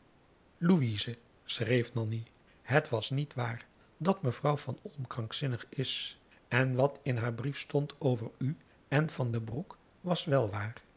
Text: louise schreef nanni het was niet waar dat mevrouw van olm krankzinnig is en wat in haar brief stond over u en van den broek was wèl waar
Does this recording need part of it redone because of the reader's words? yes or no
no